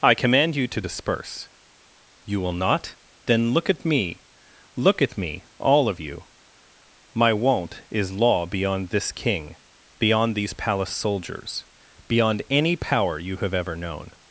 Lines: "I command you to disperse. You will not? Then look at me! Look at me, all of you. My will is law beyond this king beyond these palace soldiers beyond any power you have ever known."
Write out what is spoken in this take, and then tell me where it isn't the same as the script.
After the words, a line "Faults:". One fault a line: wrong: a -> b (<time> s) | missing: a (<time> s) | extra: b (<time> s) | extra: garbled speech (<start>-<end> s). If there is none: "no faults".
"I command you to disperse. You will not? Then look at me! Look at me, all of you. My won't is law beyond this king beyond these palace soldiers beyond any power you have ever known."
Faults:
wrong: will -> won't (7.3 s)